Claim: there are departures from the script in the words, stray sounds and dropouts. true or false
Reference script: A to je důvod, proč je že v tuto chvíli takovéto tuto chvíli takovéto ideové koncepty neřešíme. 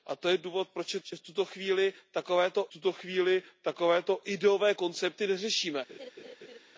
true